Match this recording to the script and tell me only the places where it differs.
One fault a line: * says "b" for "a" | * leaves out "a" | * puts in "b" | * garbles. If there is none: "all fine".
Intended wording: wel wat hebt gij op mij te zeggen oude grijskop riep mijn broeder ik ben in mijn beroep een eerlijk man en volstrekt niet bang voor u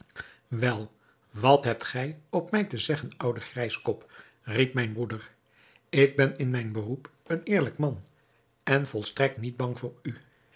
all fine